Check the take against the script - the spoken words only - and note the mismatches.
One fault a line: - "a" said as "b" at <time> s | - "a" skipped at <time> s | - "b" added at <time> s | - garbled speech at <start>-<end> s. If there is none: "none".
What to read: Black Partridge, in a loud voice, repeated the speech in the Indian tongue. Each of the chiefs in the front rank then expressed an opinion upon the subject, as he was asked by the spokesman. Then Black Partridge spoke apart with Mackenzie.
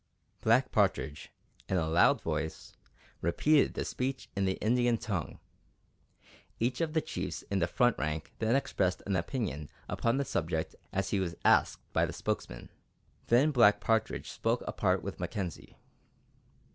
none